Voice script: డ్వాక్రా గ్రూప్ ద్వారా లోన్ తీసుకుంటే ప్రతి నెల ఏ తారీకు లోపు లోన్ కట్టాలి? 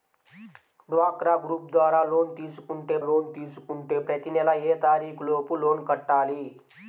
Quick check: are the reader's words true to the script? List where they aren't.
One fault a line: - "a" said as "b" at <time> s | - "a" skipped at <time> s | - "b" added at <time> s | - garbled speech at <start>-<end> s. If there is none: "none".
- "లోన్ తీసుకుంటే" added at 3.0 s